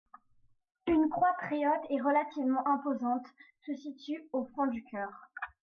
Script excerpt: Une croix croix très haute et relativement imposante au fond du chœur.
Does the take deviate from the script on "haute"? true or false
false